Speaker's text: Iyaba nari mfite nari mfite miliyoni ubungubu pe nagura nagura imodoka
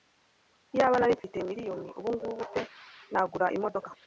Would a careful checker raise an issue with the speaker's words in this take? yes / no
yes